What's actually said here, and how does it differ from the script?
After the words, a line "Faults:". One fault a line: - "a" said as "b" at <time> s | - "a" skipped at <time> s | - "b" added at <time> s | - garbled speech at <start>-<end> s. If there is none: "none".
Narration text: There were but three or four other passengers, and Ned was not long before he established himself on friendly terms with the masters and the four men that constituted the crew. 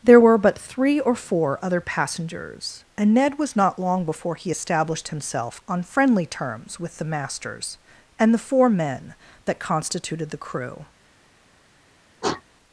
There were but three or four other passengers, and Ned was not long before he established himself on friendly terms with the masters and the four men that constituted the crew.
Faults:
none